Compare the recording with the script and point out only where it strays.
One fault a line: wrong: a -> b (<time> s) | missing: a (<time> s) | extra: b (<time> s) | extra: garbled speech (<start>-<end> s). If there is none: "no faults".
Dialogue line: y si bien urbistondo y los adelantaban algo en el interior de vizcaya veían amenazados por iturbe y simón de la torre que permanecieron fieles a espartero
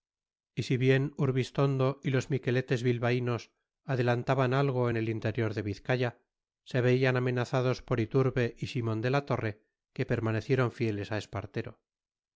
extra: miqueletes bilbaínos (2.3 s)
extra: se (6.6 s)